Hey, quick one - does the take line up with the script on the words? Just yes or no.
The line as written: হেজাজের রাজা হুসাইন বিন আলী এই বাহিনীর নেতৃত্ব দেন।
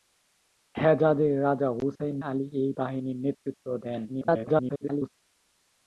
no